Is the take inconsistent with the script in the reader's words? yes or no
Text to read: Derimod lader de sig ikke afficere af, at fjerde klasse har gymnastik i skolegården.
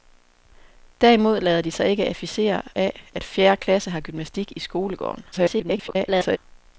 yes